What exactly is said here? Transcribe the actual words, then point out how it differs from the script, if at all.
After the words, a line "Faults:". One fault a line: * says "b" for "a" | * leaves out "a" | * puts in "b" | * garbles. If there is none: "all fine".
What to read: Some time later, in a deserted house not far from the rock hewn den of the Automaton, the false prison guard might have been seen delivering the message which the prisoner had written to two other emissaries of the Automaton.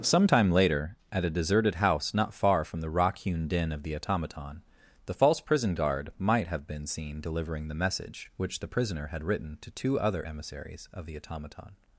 Some time later, at a deserted house not far from the rock hewn den of the Automaton, the false prison guard might have been seen delivering the message which the prisoner had written to two other emissaries of the Automaton.
Faults:
* says "at" for "in"